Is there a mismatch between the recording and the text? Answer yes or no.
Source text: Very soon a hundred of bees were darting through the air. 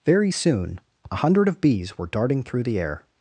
no